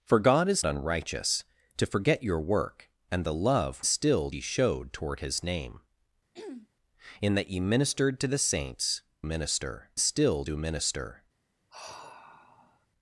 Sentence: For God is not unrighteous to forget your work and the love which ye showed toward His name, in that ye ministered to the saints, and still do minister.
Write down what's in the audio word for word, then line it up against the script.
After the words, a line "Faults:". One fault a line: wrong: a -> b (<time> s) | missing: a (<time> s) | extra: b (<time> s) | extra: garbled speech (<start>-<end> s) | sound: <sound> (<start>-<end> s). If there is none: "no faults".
For God is unrighteous to forget your work and the love still ye showed toward His name, in that ye ministered to the saints, minister still do minister.
Faults:
missing: not (0.7 s)
wrong: which -> still (3.9 s)
sound: throat clearing (6.3-6.7 s)
wrong: and -> minister (9.2 s)
sound: sigh (11.7-12.9 s)